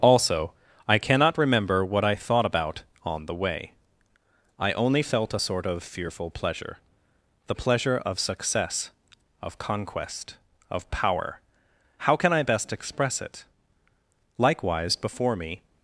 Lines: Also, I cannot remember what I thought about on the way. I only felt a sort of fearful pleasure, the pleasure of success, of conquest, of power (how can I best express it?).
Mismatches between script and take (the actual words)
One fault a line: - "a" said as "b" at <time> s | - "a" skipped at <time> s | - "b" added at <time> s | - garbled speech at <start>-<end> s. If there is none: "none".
- "Likewise before me" added at 14.4 s